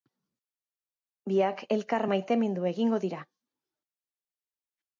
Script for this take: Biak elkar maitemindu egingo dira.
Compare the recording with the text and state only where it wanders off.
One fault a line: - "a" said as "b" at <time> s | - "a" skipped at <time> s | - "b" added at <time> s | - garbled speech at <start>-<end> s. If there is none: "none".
none